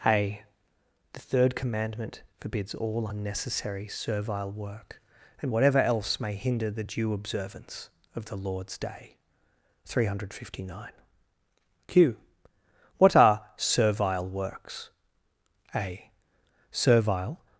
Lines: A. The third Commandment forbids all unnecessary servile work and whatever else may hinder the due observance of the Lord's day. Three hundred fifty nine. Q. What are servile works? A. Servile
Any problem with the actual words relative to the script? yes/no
no